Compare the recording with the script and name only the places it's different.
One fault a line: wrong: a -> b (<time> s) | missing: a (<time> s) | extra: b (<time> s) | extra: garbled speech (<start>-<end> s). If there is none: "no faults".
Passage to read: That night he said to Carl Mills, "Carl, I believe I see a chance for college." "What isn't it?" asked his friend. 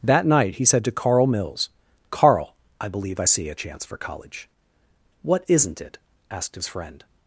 no faults